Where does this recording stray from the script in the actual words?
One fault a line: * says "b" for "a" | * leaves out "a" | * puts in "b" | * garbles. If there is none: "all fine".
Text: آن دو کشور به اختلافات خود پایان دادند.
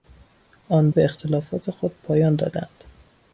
* leaves out "دو کشور"